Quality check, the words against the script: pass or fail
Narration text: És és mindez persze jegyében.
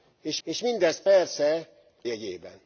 pass